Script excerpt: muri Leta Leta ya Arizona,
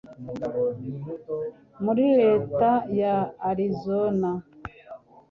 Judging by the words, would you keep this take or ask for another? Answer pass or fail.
fail